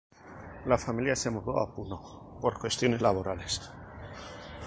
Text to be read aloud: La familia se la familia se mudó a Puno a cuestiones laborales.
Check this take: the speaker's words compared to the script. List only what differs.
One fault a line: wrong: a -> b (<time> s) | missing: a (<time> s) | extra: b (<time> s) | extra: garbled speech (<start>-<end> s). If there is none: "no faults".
missing: la familia se (1.3 s)
wrong: a -> por (2.4 s)